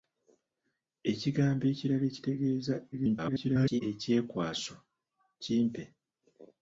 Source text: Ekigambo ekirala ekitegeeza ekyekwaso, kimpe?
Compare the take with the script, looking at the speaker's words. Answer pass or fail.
fail